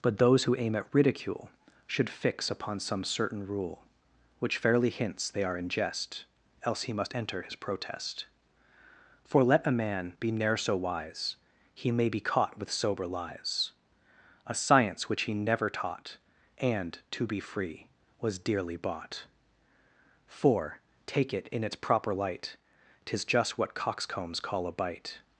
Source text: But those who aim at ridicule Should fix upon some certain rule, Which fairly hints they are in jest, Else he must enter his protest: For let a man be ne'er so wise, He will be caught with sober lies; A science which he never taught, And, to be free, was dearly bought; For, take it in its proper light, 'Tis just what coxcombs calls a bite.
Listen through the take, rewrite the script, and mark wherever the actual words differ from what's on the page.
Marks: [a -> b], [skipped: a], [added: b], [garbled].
But those who aim at ridicule Should fix upon some certain rule, Which fairly hints they are in jest, Else he must enter his protest: For let a man be ne'er so wise, He [will -> may] be caught with sober lies; A science which he never taught, And, to be free, was dearly bought; For, take it in its proper light, 'Tis just what coxcombs [calls -> call] a bite.